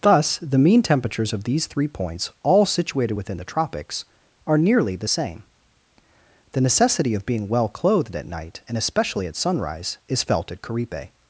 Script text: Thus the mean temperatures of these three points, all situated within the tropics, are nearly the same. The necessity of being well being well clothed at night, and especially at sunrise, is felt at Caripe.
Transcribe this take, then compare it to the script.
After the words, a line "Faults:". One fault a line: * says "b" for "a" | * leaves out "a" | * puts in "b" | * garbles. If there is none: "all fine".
Thus the mean temperatures of these three points, all situated within the tropics, are nearly the same. The necessity of being well clothed at night, and especially at sunrise, is felt at Caripe.
Faults:
* leaves out "being well"